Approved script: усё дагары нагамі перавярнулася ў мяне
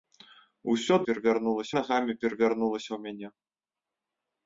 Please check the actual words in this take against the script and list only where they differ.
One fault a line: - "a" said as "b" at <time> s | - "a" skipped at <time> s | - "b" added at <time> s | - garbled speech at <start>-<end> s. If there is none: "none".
- "дагары" said as "перавярнулася" at 1.1 s